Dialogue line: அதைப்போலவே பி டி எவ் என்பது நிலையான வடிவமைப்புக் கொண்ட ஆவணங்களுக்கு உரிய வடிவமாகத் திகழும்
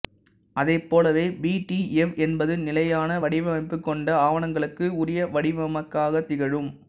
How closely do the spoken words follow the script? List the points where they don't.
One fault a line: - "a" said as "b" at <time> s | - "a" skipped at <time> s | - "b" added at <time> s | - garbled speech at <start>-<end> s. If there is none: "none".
none